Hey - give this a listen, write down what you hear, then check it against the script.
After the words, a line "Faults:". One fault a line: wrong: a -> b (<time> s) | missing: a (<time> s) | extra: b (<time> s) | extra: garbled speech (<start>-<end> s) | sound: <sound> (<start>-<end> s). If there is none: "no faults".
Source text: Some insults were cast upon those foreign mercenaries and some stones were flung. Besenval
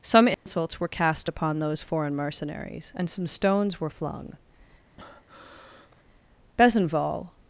Some insults were cast upon those foreign mercenaries and some stones were flung. Besenval
Faults:
sound: dropout (0.3-0.5 s)
sound: breath (5.0-6.0 s)